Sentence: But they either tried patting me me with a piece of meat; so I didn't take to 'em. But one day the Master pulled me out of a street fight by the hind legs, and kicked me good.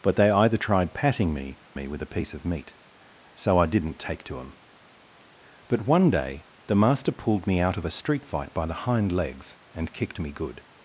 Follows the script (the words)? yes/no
yes